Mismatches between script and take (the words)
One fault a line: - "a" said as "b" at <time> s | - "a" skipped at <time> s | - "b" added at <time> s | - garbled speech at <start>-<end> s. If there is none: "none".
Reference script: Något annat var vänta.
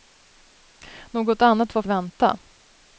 none